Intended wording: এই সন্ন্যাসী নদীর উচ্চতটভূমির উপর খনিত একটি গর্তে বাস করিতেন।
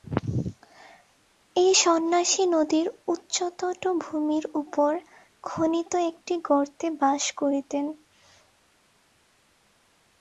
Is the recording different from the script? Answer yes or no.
no